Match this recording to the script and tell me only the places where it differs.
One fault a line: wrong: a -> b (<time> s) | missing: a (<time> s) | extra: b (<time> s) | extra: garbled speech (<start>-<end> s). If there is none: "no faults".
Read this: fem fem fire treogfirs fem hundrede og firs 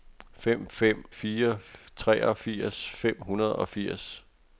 no faults